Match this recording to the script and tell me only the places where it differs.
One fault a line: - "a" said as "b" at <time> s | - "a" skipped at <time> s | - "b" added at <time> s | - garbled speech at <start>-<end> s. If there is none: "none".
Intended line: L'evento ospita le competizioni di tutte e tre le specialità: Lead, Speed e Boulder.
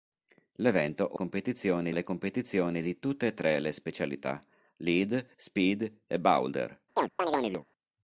- "ospita" said as "competizioni" at 1.1 s